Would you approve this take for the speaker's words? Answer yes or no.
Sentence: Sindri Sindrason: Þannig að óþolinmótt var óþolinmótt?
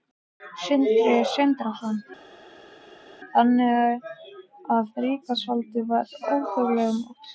no